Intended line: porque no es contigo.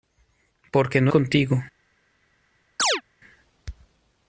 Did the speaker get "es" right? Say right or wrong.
wrong